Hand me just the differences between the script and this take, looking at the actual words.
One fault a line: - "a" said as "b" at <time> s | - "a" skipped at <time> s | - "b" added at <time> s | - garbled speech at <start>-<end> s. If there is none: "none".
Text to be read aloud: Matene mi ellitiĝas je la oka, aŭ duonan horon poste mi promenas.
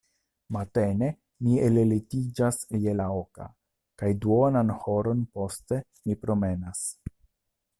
- "aŭ" said as "kaj" at 4.0 s